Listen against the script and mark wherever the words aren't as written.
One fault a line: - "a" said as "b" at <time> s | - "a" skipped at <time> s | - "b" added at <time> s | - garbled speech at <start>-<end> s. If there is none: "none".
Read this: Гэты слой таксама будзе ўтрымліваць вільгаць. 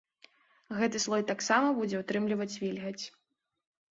none